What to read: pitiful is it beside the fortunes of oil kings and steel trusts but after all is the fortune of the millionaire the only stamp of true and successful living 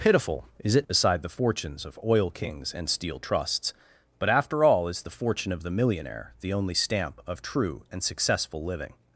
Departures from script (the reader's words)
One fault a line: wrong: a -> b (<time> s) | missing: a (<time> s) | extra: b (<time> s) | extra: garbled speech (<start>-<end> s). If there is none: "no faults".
no faults